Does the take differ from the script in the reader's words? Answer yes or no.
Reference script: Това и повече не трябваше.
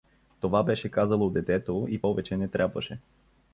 yes